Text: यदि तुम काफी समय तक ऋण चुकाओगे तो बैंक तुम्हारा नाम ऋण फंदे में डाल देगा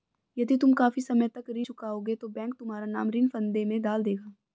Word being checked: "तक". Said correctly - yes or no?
yes